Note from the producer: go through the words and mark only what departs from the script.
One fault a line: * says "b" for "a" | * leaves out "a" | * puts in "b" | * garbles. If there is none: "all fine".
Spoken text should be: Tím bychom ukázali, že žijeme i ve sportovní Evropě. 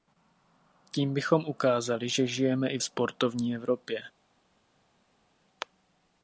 * leaves out "ve"